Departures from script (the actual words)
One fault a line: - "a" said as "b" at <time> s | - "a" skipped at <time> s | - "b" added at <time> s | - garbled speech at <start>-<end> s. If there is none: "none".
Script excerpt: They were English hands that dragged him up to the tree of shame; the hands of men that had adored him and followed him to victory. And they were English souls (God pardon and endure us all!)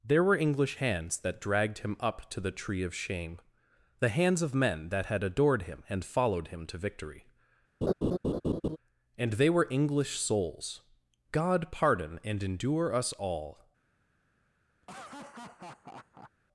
- "They" said as "There" at 0.0 s